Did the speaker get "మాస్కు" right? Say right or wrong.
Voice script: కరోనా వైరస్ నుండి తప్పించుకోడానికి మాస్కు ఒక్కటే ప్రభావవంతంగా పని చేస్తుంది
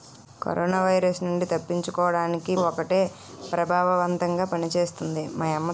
wrong